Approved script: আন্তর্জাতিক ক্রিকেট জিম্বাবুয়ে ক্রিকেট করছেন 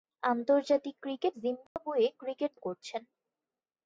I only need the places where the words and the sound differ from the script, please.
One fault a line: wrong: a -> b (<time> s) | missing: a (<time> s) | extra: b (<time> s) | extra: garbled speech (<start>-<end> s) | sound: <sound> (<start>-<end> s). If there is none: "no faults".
sound: dropout (1.7-1.8 s)